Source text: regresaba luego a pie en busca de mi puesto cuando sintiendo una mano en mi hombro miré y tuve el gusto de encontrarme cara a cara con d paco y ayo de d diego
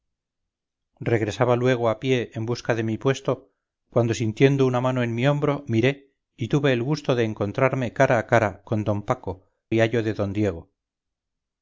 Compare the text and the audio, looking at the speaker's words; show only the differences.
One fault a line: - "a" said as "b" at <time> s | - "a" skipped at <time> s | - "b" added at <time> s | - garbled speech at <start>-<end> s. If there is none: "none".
none